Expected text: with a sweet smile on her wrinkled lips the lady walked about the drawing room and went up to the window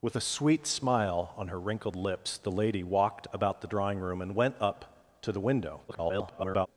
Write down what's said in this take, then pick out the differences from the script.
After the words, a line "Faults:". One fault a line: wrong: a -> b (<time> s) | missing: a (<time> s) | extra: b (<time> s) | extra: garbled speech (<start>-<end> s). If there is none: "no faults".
with a sweet smile on her wrinkled lips the lady walked about the drawing room and went up to the window [garbled]
Faults:
extra: garbled speech (5.9-6.7 s)